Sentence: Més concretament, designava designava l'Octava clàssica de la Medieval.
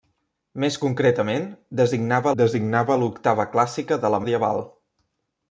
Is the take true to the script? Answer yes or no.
yes